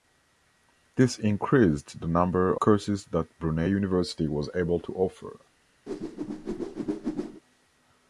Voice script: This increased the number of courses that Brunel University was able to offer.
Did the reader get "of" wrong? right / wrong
wrong